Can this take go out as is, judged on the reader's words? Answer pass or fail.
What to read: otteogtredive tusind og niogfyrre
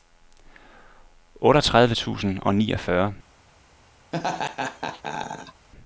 pass